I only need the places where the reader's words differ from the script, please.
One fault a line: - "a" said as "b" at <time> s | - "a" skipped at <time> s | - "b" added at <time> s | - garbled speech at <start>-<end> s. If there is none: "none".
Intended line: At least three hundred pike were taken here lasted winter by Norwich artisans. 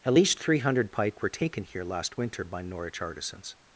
- "lasted" said as "last" at 1.8 s